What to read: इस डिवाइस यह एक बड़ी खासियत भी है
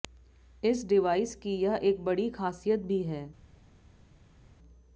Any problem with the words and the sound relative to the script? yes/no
yes